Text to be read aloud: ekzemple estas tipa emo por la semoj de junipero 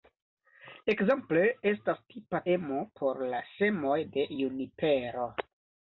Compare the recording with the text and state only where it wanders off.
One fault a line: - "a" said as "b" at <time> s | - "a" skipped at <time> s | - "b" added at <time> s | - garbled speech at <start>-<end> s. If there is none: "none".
none